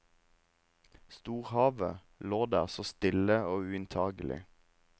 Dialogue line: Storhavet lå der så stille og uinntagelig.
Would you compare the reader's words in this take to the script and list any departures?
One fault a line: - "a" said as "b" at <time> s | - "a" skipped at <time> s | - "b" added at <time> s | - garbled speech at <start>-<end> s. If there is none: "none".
none